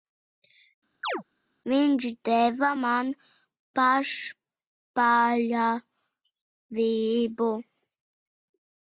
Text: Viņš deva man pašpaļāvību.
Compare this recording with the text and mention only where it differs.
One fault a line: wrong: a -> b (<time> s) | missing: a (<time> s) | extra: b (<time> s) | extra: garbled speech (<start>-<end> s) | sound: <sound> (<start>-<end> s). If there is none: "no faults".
sound: chirp (1.0-1.2 s)